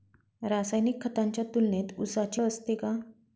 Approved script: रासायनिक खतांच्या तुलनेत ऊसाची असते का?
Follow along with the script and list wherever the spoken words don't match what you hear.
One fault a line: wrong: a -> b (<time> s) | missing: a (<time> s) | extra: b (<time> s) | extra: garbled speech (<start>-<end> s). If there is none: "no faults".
no faults